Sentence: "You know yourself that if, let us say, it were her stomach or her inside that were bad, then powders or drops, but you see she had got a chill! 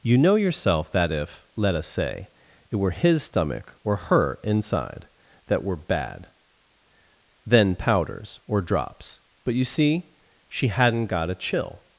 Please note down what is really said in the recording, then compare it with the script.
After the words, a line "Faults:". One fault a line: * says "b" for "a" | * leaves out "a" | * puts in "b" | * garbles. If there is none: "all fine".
"You know yourself that if, let us say, it were his stomach or her inside that were bad, then powders or drops, but you see she hadn't got a chill!
Faults:
* says "his" for "her"
* says "hadn't" for "had"